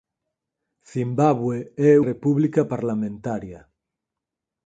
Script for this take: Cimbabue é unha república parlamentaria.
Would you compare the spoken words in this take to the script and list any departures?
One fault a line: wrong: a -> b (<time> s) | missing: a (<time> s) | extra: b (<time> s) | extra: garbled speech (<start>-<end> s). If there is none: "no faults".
missing: unha (1.9 s)